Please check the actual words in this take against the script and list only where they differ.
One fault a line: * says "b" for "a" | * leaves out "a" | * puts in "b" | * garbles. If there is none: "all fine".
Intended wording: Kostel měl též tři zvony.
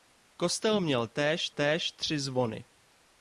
* puts in "též"